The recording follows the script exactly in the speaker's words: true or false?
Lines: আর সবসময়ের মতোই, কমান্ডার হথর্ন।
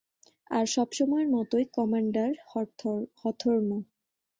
true